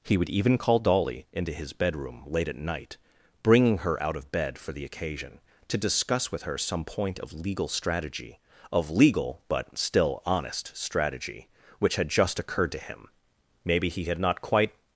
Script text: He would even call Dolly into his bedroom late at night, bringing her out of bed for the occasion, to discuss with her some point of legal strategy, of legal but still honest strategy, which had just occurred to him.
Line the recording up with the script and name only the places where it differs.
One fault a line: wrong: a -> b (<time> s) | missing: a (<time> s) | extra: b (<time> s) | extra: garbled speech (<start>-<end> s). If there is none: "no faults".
extra: Maybe he had not quite (13.6 s)